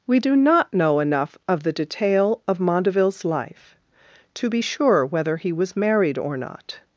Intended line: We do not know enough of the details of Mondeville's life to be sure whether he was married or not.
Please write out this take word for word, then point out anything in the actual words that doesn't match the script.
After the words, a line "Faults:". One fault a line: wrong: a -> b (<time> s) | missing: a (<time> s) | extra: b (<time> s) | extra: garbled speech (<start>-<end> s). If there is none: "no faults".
We do not know enough of the detail of Mondeville's life to be sure whether he was married or not.
Faults:
wrong: details -> detail (1.7 s)